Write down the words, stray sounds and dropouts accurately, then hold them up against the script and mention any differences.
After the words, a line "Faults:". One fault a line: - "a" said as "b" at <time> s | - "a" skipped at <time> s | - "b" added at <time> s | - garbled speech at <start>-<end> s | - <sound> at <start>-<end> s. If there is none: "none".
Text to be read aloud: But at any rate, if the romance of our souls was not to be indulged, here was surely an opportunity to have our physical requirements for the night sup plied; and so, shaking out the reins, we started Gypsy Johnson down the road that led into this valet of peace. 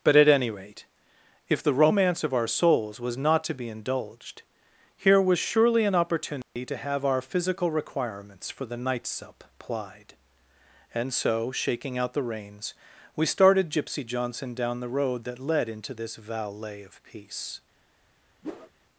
But at any rate, if the romance of our souls was not to be indulged, here was surely an opportunity to have our physical requirements for the night sup plied; and so, shaking out the reins, we started Gypsy Johnson down the road that led into this valet of peace.
Faults:
- dropout at 6.4-6.6 s
- whoosh at 18.4-18.7 s